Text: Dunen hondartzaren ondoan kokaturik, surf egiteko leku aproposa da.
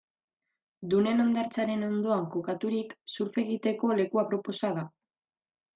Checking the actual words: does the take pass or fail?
pass